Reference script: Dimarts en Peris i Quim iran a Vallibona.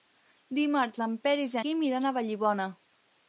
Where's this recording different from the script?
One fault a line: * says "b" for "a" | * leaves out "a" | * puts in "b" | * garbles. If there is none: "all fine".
all fine